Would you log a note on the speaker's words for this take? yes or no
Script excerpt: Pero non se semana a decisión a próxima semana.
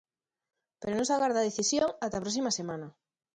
yes